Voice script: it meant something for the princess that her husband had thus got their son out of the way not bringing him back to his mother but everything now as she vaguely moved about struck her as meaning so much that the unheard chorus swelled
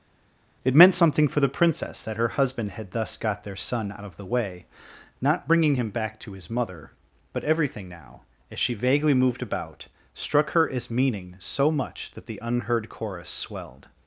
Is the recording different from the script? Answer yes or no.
no